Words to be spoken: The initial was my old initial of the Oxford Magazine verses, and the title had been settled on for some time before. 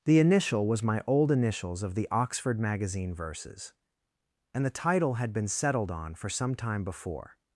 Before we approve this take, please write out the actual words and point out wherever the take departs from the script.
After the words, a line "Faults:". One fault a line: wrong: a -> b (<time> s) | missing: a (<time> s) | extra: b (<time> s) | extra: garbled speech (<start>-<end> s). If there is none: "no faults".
The initial was my old initials of the Oxford Magazine verses, and the title had been settled on for some time before.
Faults:
wrong: initial -> initials (1.3 s)